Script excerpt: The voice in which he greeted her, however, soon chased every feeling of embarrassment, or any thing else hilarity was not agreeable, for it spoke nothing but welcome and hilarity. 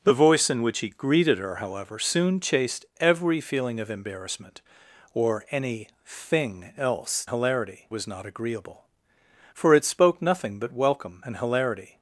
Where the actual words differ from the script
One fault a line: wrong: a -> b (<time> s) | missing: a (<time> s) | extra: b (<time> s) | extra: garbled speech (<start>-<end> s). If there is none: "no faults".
no faults